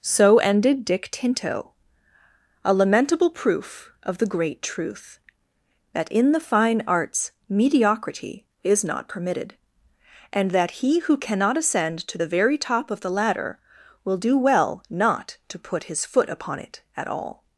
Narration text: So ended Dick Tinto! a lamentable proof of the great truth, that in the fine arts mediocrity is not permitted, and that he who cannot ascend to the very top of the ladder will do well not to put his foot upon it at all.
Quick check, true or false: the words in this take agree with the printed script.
true